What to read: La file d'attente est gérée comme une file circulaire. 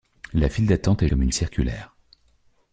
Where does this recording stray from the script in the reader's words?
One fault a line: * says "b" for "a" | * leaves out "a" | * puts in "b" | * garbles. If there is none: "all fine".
* leaves out "gérée"
* leaves out "file"